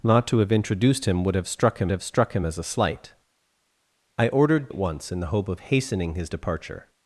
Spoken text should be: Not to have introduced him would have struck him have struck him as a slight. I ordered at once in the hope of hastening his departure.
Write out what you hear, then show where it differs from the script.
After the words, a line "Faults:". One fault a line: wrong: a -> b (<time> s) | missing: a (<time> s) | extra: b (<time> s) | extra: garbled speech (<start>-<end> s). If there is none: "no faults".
Not to have introduced him would have struck him have struck him as a slight. I ordered at once in the hope of hastening his departure.
Faults:
no faults